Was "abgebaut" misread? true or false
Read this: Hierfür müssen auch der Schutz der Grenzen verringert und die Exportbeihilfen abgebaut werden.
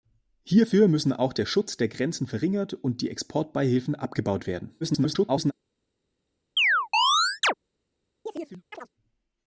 false